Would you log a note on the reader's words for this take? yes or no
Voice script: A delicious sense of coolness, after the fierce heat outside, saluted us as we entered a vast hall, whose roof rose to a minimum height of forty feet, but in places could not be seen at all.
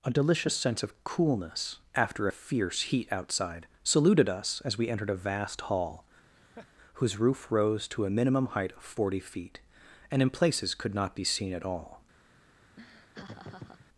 yes